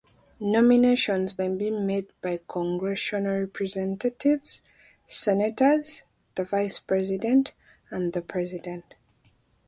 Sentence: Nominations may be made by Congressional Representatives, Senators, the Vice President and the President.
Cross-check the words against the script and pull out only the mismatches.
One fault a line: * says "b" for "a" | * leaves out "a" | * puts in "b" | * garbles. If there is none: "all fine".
all fine